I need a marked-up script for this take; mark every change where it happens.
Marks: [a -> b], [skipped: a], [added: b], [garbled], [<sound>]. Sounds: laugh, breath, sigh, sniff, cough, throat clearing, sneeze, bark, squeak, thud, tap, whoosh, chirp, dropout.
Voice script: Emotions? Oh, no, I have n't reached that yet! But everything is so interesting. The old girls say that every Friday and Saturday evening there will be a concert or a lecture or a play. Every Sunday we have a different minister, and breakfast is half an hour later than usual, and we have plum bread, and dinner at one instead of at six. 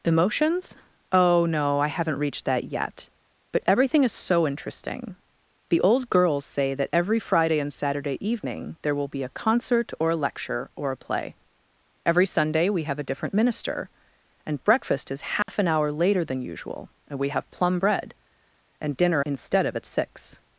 Emotions? Oh, no, I have n't reached that yet! But everything is so interesting. The old girls say that every Friday and Saturday evening there will be a concert or a lecture or a play. Every Sunday we have a different minister, and breakfast is half [dropout] an hour later than usual, and we have plum bread, and dinner [skipped: at one] instead of at six.